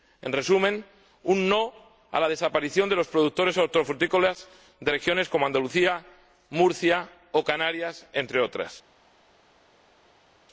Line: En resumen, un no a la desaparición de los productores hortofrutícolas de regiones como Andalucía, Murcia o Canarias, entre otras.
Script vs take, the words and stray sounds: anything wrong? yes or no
no